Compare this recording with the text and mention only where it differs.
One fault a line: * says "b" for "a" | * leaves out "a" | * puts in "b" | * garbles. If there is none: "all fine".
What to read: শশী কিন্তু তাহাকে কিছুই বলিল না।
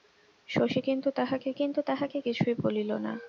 * puts in "কিন্তু তাহাকে"